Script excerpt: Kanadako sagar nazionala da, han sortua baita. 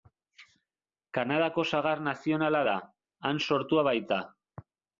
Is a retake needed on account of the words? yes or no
no